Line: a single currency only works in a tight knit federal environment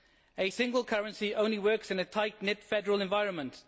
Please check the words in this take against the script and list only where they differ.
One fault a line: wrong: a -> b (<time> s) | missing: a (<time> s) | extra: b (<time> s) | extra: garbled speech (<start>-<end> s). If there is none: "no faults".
no faults